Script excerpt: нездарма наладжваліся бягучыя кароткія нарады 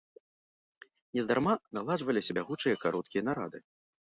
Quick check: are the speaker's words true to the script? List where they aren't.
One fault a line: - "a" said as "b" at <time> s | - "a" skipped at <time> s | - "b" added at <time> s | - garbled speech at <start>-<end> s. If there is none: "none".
none